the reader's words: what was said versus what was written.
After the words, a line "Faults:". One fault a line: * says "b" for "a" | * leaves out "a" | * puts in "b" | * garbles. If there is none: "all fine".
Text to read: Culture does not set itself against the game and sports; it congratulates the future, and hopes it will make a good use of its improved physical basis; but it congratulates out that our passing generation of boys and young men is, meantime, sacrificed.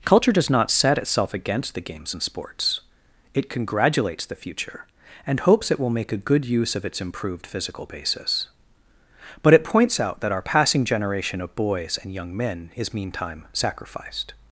Culture does not set itself against the games and sports; it congratulates the future, and hopes it will make a good use of its improved physical basis; but it points out that our passing generation of boys and young men is, meantime, sacrificed.
Faults:
* says "games" for "game"
* says "points" for "congratulates"